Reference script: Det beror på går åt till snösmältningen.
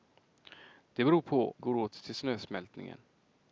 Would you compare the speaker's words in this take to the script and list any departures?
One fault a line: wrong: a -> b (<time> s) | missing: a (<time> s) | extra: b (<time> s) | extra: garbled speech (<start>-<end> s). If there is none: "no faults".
no faults